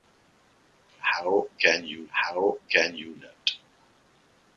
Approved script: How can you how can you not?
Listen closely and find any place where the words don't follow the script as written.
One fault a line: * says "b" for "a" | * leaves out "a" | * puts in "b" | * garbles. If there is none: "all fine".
all fine